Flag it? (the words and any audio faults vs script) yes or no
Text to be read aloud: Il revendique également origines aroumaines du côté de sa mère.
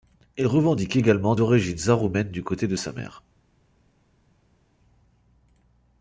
no